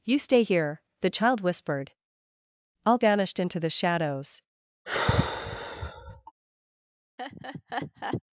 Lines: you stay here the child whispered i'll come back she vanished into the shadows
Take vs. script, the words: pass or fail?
fail